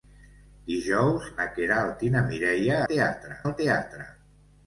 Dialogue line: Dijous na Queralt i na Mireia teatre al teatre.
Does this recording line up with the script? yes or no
yes